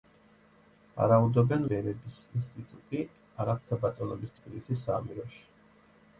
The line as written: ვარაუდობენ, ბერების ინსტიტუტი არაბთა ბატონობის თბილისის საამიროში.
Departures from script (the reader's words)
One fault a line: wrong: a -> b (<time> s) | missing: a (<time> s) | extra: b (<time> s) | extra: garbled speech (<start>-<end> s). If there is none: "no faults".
no faults